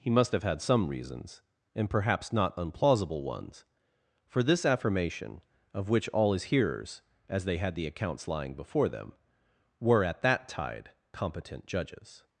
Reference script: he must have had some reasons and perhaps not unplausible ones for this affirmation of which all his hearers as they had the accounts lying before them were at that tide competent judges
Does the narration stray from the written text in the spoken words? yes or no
no